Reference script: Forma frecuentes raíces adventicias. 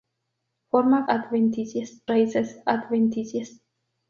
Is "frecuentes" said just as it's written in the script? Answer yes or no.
no